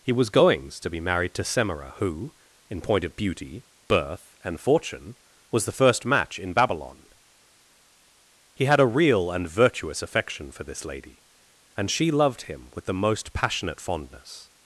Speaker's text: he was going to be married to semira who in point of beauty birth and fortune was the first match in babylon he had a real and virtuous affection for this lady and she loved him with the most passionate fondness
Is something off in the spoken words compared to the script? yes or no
yes